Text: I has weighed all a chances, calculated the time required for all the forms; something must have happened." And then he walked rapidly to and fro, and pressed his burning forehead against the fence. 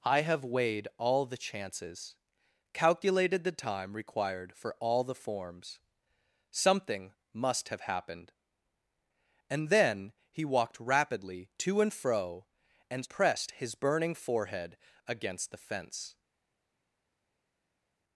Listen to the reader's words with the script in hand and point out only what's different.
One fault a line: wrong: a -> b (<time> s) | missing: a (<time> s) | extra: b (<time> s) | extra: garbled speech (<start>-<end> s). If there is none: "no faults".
wrong: has -> have (0.2 s)
wrong: a -> the (1.3 s)